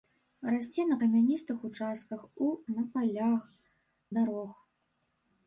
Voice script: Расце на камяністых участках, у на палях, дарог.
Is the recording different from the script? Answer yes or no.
no